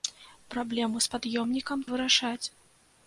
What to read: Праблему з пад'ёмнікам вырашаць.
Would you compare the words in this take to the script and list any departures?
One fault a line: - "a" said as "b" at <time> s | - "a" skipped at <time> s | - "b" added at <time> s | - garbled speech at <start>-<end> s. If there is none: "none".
none